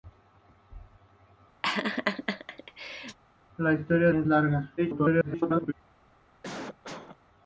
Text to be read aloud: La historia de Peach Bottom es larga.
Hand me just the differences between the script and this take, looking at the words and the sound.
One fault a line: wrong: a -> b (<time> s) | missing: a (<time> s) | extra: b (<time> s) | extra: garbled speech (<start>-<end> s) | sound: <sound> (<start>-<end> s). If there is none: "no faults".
sound: laugh (1.6-3.2 s)
missing: de Peach Bottom (4.1 s)
extra: garbled speech (4.8-5.7 s)
sound: cough (6.4-7.2 s)